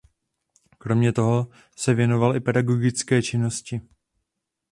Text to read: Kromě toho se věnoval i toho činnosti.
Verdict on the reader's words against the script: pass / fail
fail